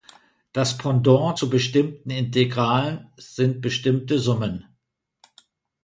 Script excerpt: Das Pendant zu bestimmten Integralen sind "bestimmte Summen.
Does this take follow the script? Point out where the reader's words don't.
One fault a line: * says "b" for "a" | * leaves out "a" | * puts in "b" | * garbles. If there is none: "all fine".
all fine